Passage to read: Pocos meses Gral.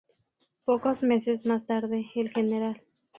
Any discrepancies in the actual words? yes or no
yes